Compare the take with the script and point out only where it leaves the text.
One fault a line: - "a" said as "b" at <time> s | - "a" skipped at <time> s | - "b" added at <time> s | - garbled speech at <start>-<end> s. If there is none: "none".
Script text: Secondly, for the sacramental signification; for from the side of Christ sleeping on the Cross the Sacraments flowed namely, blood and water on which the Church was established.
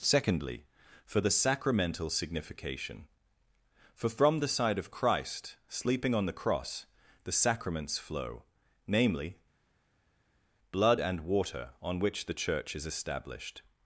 - "flowed" said as "flow" at 8.0 s
- "was" said as "is" at 12.7 s